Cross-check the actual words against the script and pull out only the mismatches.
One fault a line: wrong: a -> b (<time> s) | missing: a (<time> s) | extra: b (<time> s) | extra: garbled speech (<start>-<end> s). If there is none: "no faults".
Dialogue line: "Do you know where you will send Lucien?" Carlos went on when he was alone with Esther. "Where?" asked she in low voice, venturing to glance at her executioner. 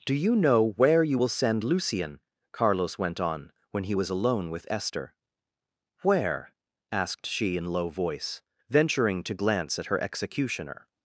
no faults